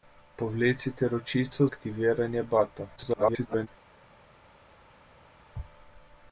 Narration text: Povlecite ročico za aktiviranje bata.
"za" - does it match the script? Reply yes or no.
no